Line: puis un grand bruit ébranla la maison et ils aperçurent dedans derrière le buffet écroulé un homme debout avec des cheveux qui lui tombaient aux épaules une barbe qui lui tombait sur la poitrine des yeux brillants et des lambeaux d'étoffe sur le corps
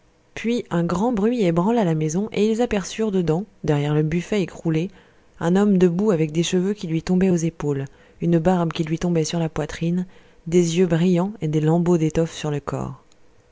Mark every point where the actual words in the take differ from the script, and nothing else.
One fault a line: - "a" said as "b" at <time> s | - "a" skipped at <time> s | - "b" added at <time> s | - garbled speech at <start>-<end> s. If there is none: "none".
none